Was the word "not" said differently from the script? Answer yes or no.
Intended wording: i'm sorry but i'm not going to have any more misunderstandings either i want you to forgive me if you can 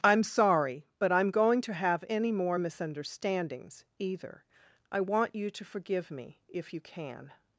yes